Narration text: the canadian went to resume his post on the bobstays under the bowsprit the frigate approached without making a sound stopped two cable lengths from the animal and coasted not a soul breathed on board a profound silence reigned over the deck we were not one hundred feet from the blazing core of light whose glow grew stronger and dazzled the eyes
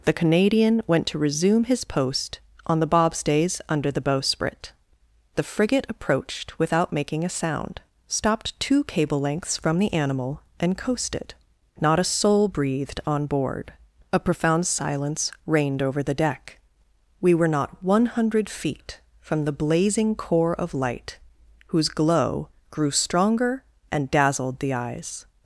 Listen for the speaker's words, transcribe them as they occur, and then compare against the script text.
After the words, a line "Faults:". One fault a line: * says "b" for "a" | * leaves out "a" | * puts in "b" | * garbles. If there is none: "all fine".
the canadian went to resume his post on the bobstays under the bowsprit the frigate approached without making a sound stopped two cable lengths from the animal and coasted not a soul breathed on board a profound silence reigned over the deck we were not one hundred feet from the blazing core of light whose glow grew stronger and dazzled the eyes
Faults:
all fine